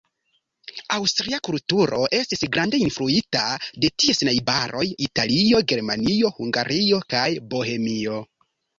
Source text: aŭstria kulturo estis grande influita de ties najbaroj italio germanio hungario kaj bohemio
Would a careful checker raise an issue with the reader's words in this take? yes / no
no